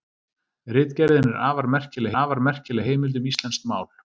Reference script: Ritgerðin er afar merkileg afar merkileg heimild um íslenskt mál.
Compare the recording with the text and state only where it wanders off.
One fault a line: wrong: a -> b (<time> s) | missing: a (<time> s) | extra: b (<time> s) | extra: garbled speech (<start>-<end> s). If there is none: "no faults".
no faults